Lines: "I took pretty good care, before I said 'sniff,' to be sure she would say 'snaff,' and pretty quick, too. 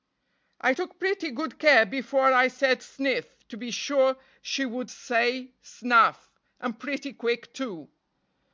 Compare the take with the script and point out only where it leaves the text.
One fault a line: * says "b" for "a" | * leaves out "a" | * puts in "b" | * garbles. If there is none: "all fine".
all fine